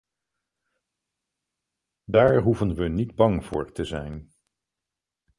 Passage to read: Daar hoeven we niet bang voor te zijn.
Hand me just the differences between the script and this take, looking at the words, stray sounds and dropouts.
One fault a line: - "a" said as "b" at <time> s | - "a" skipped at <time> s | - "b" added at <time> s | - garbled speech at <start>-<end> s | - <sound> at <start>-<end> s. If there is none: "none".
none